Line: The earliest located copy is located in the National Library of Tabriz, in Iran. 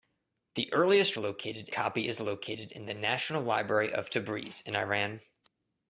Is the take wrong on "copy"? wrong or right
right